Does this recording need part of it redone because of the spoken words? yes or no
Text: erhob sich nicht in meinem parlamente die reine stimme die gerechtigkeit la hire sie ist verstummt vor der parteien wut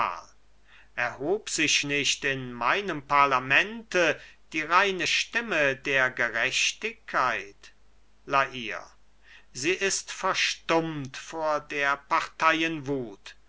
yes